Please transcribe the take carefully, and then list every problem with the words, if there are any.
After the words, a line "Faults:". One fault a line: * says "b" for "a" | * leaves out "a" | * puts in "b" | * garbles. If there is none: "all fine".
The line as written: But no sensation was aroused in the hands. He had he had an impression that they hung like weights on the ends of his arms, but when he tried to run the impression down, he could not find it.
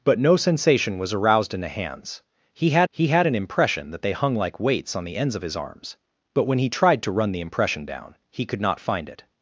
But no sensation was aroused in the hands. He had he had an impression that they hung like weights on the ends of his arms, but when he tried to run the impression down, he could not find it.
Faults:
all fine